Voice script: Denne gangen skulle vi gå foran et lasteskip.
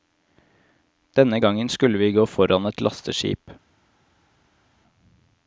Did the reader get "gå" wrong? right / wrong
right